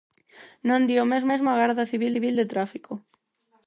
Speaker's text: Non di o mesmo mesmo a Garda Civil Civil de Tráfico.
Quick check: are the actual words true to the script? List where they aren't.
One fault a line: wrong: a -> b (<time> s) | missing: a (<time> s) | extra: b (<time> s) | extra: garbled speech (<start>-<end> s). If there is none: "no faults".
no faults